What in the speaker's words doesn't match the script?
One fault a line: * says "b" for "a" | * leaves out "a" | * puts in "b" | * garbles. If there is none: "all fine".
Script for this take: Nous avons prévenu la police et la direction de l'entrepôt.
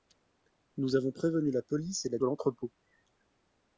* leaves out "direction"